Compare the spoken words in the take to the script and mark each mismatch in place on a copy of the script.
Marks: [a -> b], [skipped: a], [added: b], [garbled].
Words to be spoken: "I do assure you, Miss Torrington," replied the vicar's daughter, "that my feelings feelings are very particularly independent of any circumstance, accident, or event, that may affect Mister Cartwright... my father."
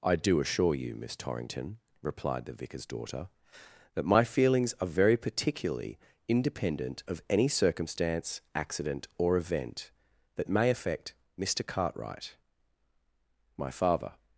"I do assure you, Miss Torrington," replied the vicar's daughter, "that my feelings [skipped: feelings] are very particularly independent of any circumstance, accident, or event, that may affect Mister Cartwright... my father."